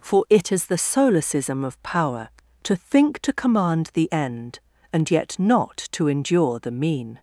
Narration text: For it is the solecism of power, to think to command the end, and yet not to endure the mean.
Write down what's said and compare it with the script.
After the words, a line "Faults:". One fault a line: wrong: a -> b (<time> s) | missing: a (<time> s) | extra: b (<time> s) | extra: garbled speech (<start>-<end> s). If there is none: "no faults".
For it is the solecism of power, to think to command the end, and yet not to endure the mean.
Faults:
no faults